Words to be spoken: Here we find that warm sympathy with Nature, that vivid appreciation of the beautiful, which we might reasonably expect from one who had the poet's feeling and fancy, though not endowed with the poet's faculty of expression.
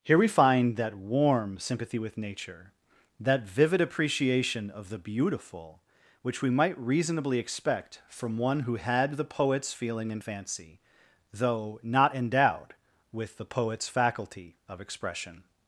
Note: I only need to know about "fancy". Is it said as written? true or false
true